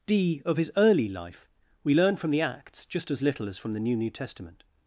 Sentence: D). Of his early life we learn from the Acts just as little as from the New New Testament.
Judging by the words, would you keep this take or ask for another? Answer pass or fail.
pass